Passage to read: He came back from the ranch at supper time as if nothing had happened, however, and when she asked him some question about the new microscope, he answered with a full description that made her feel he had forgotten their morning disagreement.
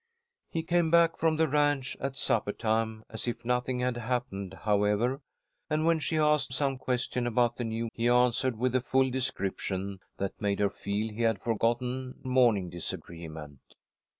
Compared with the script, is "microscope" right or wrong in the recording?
wrong